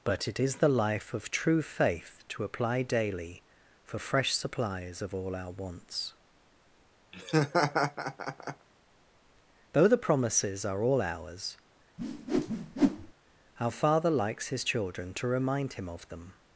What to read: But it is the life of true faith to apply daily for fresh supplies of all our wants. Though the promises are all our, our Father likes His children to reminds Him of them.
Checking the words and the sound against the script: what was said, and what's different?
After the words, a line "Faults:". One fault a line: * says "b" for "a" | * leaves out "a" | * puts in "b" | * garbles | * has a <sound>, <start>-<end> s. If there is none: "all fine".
But it is the life of true faith to apply daily for fresh supplies of all our wants. Though the promises are all ours, our Father likes His children to remind Him of them.
Faults:
* has a laugh, 7.1-8.7 s
* says "ours" for "our"
* has a whoosh, 12.0-13.1 s
* says "remind" for "reminds"